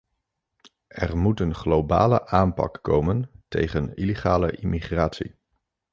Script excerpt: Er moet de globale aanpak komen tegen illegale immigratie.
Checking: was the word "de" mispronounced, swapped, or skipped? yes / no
yes